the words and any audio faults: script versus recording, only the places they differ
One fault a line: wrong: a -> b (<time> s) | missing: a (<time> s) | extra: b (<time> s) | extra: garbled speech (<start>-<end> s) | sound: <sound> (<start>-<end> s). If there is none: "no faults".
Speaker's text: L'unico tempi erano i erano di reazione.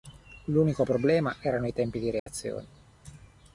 wrong: tempi -> problema (0.8 s)
wrong: erano -> tempi (1.7 s)
sound: dropout (2.2-2.3 s)